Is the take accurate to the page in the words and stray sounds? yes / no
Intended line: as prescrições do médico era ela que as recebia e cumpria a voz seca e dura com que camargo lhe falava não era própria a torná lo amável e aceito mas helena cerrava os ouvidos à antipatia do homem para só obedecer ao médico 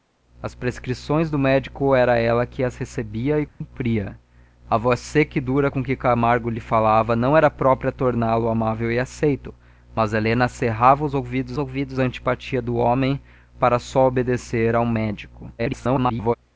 no